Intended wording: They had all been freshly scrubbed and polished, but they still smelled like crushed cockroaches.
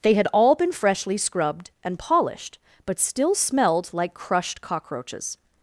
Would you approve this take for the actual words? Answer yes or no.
no